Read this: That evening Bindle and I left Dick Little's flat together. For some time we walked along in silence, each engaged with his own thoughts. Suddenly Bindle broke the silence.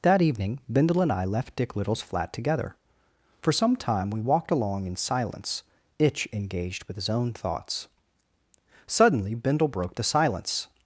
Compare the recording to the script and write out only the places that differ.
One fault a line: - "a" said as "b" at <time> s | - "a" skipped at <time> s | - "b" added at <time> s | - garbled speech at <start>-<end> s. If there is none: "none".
- "each" said as "itch" at 6.0 s